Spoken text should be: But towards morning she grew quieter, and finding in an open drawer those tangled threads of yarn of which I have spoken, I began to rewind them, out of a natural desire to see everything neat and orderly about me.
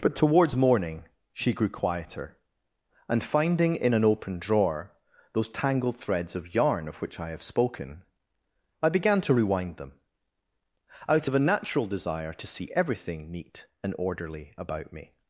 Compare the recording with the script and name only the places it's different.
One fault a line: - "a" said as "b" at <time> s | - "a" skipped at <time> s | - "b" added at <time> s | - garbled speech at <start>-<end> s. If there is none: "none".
none